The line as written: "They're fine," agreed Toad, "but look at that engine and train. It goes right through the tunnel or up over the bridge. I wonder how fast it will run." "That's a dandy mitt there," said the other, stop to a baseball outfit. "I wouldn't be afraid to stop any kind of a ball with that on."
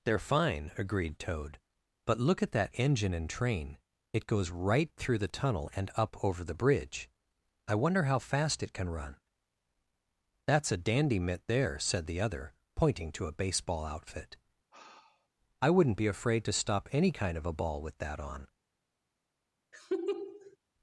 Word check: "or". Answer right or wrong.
wrong